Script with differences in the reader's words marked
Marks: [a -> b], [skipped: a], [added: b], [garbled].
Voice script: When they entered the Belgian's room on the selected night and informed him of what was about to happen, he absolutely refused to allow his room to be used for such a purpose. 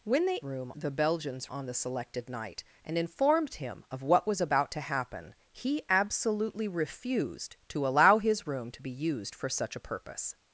When they [entered -> room] the Belgian's [skipped: room] on the selected night and informed him of what was about to happen, he absolutely refused to allow his room to be used for such a purpose.